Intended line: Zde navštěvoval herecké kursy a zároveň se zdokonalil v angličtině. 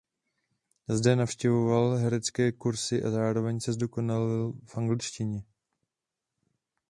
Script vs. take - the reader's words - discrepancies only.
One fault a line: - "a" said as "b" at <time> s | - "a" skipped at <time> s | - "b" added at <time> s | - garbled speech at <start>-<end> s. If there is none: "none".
none